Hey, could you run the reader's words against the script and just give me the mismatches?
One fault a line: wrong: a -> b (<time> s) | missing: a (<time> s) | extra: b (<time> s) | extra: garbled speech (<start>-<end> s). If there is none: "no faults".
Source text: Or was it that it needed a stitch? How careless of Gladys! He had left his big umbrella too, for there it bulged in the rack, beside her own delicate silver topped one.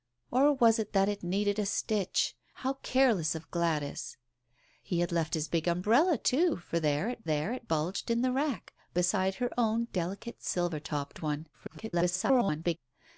extra: there it (7.2 s)
extra: garbled speech (11.5-12.8 s)